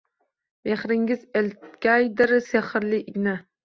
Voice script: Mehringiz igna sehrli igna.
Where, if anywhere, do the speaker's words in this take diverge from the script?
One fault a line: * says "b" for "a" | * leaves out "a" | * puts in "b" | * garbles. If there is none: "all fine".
* says "eltgaydir" for "igna"